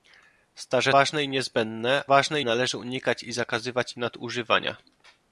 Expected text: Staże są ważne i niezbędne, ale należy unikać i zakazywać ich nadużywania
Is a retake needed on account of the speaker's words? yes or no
yes